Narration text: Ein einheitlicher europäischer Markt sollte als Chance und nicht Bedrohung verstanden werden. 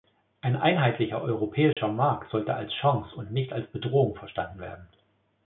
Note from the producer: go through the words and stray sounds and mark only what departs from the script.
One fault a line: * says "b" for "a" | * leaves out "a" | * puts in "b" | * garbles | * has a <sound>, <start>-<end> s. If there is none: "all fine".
* has a dropout, 1.7-1.8 s
* puts in "als"